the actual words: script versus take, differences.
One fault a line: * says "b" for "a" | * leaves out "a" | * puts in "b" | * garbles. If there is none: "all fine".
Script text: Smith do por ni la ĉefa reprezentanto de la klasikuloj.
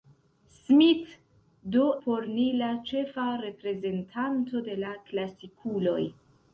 all fine